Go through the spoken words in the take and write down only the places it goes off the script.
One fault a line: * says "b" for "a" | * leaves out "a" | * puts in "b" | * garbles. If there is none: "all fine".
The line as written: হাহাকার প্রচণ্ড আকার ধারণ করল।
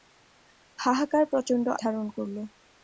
* leaves out "আকার"